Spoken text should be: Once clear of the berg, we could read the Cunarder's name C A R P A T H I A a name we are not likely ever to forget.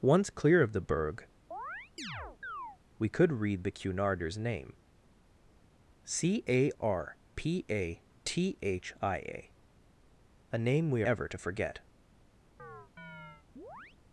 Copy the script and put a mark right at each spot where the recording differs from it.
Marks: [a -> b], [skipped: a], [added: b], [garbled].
Once clear of the berg, we could read the Cunarder's name C A R P A T H I A a name we [skipped: are not likely] ever to forget.